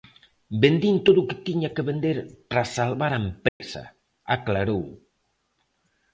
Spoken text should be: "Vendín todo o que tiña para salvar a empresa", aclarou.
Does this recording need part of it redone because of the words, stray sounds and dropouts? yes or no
yes